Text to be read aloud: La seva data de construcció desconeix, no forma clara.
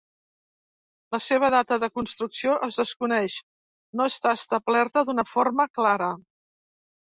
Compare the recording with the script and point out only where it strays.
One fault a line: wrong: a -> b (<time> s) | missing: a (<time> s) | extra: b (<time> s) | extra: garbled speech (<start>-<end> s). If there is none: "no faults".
extra: es (2.7 s)
extra: està establerta d'una (4.1 s)